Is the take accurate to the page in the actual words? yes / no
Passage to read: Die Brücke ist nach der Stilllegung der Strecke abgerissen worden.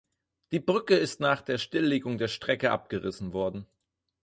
yes